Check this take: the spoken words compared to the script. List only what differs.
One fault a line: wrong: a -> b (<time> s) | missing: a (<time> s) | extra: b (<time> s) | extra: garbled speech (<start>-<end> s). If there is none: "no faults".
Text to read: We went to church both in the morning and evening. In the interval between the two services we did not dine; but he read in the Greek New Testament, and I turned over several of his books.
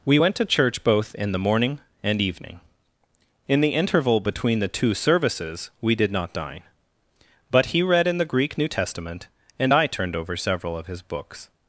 no faults